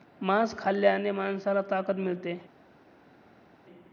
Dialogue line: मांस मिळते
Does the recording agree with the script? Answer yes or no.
no